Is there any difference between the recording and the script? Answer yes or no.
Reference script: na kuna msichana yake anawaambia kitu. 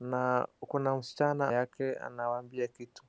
no